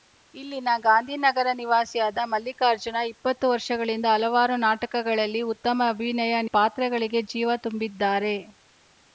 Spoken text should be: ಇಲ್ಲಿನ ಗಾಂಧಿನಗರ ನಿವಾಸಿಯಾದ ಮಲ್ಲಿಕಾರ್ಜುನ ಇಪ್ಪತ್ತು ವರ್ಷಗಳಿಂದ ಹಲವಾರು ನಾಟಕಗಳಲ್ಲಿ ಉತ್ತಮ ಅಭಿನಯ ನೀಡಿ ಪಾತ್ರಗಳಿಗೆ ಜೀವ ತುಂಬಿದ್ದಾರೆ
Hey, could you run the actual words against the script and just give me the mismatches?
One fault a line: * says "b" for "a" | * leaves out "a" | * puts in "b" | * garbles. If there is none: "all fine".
* leaves out "ನೀಡಿ"